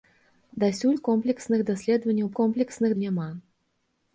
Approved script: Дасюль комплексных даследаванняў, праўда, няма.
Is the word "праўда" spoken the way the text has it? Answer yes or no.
no